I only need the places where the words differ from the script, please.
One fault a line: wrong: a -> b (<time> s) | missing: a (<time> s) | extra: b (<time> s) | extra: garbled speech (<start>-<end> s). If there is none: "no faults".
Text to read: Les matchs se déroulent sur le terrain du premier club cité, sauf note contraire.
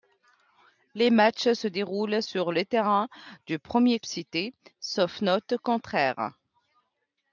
missing: club (4.0 s)